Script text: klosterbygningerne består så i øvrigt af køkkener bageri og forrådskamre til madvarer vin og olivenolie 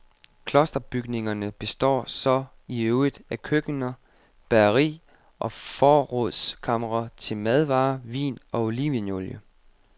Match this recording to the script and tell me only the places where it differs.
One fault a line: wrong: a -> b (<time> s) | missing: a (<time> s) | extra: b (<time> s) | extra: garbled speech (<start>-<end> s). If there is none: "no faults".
no faults